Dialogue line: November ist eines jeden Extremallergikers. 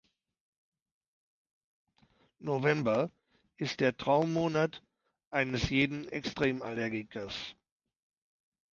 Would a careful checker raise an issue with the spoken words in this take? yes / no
yes